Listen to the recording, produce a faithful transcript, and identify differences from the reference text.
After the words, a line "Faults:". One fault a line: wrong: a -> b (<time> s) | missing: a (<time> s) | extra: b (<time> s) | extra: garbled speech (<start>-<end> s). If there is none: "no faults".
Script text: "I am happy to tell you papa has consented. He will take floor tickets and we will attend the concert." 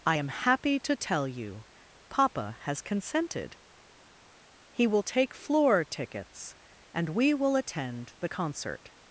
"I am happy to tell you papa has consented. He will take floor tickets and we will attend the concert."
Faults:
no faults